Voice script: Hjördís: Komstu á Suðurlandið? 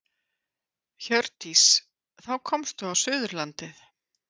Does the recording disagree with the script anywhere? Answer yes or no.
yes